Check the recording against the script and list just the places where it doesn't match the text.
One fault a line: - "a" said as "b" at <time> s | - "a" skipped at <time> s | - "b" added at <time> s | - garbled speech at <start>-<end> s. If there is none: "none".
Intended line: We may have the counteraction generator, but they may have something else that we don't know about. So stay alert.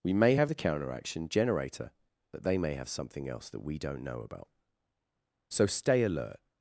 none